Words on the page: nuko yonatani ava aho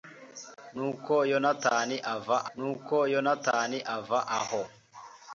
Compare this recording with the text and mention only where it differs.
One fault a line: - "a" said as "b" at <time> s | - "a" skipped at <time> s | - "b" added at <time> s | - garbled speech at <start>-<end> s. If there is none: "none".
- "nuko yonatani ava" added at 2.5 s